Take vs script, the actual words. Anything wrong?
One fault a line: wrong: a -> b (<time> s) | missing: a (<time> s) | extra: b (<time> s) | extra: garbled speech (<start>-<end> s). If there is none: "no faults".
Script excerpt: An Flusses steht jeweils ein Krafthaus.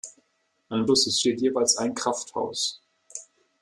no faults